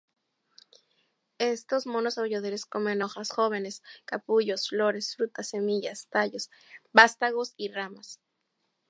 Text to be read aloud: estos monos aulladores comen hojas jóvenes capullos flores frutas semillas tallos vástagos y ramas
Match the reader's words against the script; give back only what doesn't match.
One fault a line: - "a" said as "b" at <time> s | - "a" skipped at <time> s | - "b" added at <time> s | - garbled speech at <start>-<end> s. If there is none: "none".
none